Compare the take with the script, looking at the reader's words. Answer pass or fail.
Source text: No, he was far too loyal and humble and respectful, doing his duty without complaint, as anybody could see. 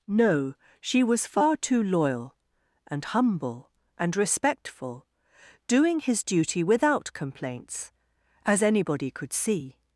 fail